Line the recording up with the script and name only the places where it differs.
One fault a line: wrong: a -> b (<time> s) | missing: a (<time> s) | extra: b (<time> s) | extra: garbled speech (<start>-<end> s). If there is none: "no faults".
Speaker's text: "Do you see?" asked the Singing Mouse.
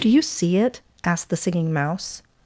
extra: it (0.6 s)